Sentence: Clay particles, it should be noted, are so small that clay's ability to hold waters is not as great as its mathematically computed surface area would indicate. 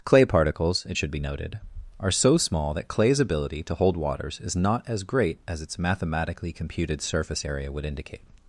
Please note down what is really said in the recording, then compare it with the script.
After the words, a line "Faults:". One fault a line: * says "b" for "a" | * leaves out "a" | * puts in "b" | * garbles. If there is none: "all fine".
Clay particles, it should be noted, are so small that clay's ability to hold waters is not as great as its mathematically computed surface area would indicate.
Faults:
all fine